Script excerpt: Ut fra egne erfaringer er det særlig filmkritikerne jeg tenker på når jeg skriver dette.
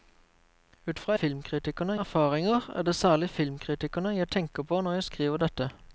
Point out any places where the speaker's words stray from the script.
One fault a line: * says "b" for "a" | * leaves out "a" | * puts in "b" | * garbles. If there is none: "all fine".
* says "filmkritikerne" for "egne"